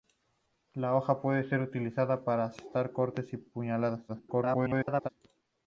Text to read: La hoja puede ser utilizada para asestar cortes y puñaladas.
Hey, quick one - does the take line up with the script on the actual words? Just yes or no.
no